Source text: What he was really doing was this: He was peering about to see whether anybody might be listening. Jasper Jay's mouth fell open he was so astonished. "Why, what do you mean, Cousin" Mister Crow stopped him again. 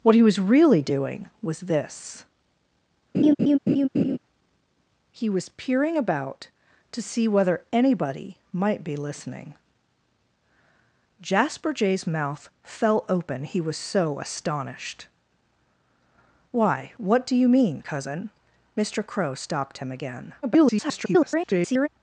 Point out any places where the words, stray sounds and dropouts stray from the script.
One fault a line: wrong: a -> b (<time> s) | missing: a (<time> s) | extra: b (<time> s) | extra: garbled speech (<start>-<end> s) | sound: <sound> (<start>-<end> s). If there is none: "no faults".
sound: laugh (3.1-4.2 s)
extra: garbled speech (20.4-21.9 s)